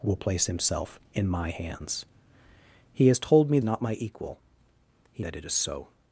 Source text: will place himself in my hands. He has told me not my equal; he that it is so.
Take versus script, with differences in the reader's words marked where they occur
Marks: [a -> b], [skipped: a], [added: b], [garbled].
will place himself in my hands. He has told me not my equal; he that it is so.